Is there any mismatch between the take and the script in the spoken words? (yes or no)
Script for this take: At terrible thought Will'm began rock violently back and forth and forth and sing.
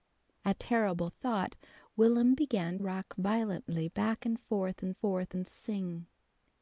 no